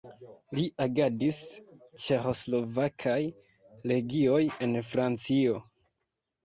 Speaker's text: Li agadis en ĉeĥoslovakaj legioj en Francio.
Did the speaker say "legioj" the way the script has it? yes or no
yes